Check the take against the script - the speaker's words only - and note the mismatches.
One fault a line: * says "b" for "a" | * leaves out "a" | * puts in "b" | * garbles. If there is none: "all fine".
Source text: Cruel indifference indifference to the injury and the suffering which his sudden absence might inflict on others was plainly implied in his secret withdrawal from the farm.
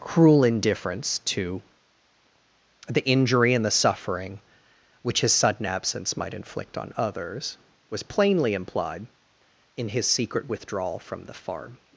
* leaves out "indifference"